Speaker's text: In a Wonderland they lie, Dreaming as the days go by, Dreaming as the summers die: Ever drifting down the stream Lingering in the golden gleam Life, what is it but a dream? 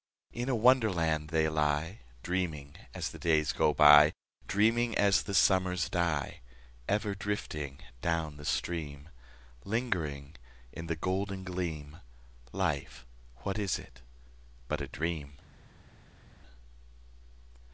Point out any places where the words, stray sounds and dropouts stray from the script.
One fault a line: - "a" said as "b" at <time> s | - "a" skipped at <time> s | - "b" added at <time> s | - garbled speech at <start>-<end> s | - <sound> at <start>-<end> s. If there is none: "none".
none